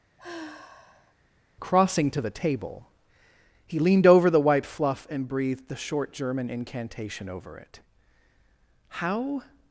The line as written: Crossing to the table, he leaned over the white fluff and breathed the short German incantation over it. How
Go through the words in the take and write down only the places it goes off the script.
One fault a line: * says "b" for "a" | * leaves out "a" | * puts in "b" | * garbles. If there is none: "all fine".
all fine